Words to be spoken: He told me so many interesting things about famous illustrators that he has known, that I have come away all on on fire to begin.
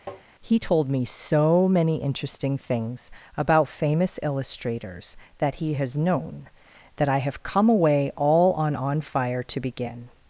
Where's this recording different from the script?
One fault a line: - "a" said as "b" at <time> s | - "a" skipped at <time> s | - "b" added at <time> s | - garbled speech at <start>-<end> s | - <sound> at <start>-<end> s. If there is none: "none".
- tap at 0.1-0.2 s